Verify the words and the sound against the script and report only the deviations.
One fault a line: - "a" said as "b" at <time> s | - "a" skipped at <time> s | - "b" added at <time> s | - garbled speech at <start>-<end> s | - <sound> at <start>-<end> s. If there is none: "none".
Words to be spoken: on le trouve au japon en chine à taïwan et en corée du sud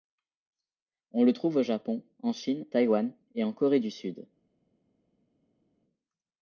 - "à" skipped at 2.6 s